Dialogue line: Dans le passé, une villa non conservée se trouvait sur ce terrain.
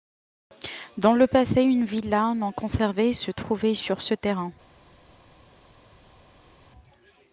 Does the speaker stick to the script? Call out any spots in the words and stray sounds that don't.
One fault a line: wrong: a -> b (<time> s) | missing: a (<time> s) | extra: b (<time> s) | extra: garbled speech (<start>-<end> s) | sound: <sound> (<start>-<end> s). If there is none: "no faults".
no faults